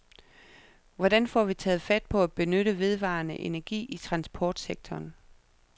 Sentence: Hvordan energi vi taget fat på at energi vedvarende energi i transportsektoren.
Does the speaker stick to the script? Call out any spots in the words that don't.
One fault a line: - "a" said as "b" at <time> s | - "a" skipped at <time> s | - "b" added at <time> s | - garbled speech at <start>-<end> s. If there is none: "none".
- "energi" said as "får" at 1.3 s
- "energi" said as "benytte" at 2.3 s